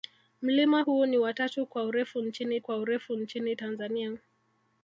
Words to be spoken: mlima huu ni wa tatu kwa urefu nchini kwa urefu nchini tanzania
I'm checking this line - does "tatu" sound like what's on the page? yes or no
yes